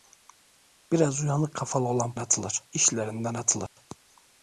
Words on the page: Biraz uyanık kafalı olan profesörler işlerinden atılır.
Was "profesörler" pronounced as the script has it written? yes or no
no